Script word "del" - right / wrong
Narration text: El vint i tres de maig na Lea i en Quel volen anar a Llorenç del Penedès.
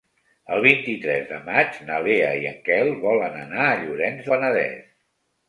wrong